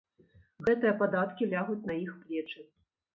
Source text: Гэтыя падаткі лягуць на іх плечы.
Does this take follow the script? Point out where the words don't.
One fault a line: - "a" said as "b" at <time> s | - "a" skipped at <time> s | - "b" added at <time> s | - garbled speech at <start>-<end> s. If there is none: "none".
none